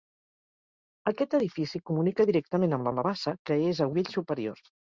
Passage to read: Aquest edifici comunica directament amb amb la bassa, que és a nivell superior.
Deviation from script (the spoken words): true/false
false